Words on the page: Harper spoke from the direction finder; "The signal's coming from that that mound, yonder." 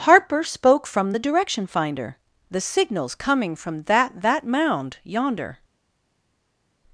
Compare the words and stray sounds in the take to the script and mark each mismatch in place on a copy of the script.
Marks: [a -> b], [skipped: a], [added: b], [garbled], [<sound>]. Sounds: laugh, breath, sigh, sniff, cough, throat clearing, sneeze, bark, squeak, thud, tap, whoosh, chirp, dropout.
Harper spoke from the direction finder; "The signal's coming from that that mound, yonder."